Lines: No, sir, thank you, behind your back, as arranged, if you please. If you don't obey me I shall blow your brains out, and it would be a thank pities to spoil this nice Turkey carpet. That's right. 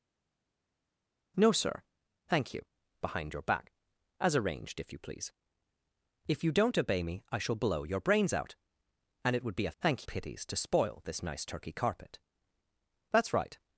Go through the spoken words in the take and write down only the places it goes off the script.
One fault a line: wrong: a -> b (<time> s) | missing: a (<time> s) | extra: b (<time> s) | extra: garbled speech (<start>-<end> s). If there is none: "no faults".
no faults